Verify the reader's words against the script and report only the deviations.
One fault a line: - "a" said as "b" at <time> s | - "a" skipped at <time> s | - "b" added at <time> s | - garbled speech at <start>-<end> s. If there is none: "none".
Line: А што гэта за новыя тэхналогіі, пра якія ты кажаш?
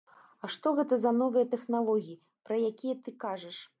none